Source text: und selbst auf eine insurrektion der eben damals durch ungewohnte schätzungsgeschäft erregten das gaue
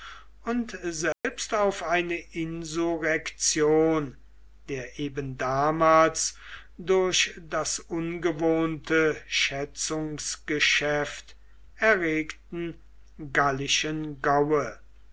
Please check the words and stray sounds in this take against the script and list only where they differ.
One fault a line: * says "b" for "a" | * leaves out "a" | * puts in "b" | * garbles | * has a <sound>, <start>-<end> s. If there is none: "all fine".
* has a dropout, 1.1-1.2 s
* puts in "das"
* says "gallischen" for "das"